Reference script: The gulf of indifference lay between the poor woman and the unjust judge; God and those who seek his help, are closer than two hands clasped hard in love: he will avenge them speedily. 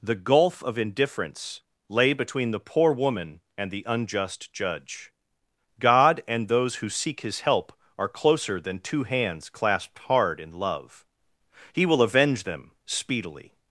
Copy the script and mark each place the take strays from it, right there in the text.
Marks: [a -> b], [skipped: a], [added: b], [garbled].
The gulf of indifference lay between the poor woman and the unjust judge; God and those who seek his help, are closer than two hands clasped hard in love: he will avenge them speedily.